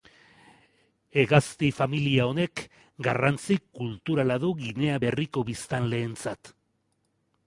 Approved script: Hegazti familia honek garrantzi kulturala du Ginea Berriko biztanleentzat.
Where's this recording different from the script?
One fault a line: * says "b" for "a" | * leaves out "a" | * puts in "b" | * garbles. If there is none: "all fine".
all fine